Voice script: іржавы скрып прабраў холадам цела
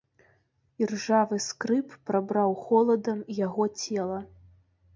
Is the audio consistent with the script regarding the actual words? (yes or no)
no